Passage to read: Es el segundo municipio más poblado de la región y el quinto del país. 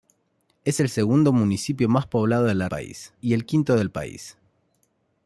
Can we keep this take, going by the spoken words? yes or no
no